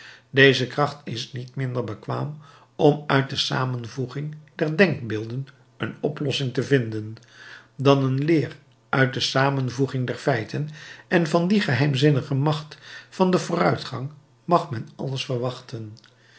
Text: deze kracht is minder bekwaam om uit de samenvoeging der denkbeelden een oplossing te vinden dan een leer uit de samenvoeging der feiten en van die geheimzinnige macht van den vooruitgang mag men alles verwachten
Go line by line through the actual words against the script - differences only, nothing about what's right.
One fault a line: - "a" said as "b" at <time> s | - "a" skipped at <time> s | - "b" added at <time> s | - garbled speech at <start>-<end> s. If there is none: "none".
- "niet" added at 1.3 s